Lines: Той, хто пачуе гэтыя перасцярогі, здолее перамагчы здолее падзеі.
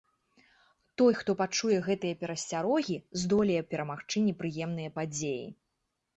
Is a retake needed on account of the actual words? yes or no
yes